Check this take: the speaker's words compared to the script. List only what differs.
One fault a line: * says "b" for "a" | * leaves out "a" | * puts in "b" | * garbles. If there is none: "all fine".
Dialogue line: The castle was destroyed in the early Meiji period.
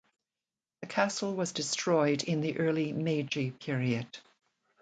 all fine